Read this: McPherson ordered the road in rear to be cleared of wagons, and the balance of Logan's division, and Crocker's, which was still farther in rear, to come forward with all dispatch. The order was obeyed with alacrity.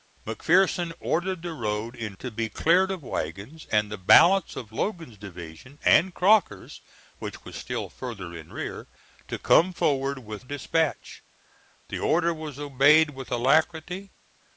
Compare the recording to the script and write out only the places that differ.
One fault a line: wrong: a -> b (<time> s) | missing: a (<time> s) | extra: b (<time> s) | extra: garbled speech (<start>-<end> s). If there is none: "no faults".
missing: rear (2.2 s)
missing: all (10.4 s)